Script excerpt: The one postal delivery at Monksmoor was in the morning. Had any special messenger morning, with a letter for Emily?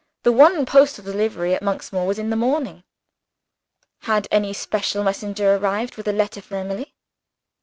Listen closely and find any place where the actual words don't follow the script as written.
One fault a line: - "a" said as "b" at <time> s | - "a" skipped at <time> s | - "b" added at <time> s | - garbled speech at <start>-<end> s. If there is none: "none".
- "morning" said as "arrived" at 5.6 s